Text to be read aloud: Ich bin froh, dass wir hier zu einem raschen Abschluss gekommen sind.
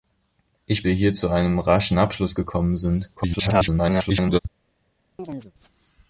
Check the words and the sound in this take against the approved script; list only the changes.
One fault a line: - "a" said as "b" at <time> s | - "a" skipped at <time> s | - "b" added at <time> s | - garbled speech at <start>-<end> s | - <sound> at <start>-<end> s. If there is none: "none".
- "bin froh dass" skipped at 0.8 s
- garbled speech at 3.2-4.4 s
- chirp at 5.2-5.5 s